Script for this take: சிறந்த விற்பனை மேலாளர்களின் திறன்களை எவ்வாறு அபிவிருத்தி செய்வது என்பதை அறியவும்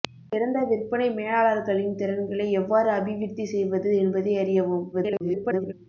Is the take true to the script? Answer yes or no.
no